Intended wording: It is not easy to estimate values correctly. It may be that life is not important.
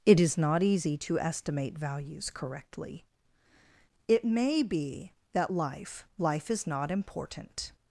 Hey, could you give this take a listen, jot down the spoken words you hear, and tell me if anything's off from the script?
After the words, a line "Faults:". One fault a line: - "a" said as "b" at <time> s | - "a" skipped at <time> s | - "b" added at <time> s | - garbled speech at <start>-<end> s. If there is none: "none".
It is not easy to estimate values correctly. It may be that life life is not important.
Faults:
- "life" added at 6.2 s